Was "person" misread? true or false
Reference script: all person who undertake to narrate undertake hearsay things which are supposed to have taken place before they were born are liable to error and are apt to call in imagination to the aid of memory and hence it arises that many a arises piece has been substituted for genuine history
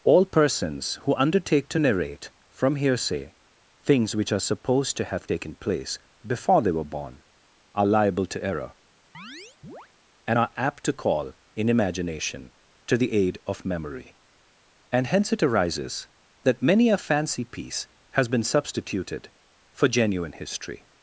true